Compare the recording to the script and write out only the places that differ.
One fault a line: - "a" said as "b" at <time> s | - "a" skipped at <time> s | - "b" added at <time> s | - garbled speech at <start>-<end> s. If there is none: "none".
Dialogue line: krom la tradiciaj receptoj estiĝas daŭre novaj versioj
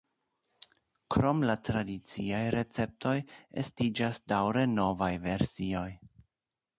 none